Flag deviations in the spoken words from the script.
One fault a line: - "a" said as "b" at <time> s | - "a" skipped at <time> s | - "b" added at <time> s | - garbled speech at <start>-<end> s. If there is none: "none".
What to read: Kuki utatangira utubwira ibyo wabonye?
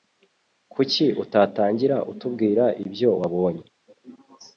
none